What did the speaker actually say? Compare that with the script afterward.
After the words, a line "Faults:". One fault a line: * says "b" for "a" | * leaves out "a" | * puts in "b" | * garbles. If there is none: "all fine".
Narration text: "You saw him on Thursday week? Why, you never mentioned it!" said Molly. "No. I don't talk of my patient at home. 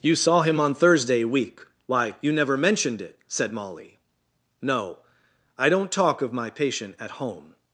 "You saw him on Thursday week? Why, you never mentioned it!" said Molly. "No. I don't talk of my patient at home.
Faults:
all fine